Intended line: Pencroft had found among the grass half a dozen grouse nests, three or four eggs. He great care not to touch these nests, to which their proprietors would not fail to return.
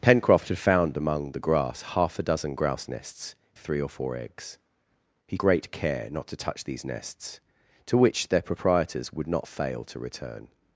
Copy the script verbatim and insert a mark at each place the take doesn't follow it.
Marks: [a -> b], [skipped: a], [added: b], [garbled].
Pencroft had found among the grass half a dozen grouse nests, three or four eggs. He great care not to touch these nests, to which their proprietors would not fail to return.